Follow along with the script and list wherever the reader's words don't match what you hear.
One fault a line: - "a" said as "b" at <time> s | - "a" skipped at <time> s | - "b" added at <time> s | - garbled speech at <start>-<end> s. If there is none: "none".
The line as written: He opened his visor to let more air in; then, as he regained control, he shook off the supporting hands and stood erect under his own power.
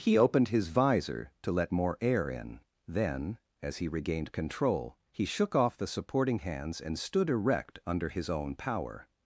none